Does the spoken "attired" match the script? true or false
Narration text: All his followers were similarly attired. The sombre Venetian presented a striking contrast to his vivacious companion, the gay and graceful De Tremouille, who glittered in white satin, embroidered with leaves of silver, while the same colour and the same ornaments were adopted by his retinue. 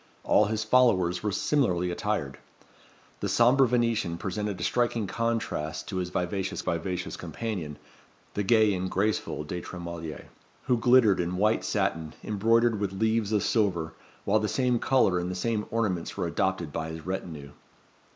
true